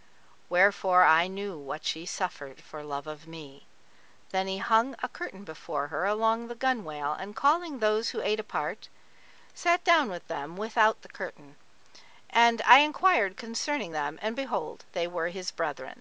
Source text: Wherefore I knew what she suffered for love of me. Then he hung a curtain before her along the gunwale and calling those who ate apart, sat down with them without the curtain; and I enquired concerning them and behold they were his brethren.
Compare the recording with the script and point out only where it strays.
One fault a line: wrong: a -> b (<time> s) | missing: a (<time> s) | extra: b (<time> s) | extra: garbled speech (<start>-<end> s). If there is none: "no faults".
no faults